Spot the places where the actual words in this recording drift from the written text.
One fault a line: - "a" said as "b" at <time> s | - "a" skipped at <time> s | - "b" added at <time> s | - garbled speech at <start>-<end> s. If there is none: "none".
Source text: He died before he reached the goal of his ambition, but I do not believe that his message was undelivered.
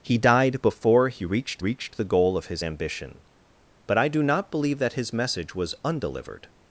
- "reached" added at 1.6 s